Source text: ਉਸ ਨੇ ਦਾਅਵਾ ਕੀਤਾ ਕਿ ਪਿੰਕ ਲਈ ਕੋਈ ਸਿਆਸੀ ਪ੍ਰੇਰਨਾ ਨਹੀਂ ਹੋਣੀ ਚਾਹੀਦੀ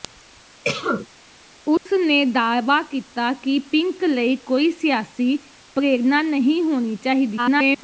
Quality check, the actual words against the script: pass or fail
fail